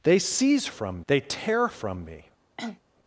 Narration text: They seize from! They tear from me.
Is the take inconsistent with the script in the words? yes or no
no